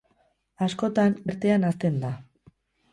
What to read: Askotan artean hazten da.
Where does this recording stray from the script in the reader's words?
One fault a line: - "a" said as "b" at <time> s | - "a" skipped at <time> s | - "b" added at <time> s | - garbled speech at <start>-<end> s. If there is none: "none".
none